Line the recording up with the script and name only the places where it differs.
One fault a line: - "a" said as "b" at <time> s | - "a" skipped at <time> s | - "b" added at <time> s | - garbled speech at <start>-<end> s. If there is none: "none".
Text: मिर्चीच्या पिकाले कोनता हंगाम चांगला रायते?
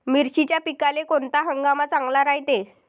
none